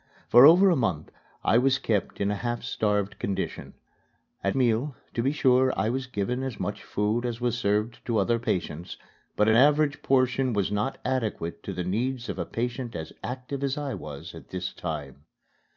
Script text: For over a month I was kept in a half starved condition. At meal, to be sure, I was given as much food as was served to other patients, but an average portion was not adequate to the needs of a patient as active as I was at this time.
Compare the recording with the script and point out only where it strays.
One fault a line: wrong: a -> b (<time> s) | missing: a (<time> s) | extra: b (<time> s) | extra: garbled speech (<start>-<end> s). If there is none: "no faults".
no faults